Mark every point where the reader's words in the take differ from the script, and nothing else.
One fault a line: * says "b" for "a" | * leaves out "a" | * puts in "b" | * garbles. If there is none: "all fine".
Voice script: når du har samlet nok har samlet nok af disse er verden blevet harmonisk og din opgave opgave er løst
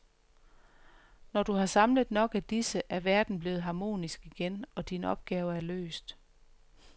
* leaves out "har samlet nok"
* puts in "igen"
* leaves out "opgave"